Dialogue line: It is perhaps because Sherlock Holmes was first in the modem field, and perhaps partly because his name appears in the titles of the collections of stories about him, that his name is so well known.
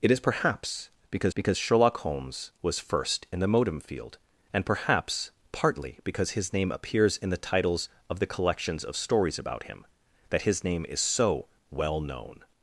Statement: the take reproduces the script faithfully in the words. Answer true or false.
false